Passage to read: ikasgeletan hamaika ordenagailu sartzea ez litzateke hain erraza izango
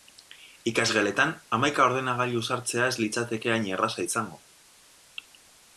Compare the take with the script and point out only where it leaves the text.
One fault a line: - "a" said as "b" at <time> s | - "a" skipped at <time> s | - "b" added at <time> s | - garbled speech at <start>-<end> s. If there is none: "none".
none